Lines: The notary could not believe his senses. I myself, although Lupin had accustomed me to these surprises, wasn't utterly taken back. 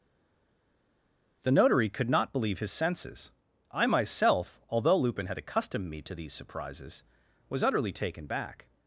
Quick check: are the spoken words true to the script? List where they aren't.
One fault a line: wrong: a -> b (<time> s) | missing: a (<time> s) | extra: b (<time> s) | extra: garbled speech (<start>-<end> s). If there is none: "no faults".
wrong: wasn't -> was (7.5 s)